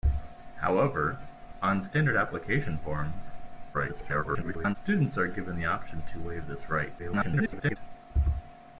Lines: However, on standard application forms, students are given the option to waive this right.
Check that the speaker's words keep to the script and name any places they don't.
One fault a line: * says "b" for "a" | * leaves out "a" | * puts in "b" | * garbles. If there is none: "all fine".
* garbles
* garbles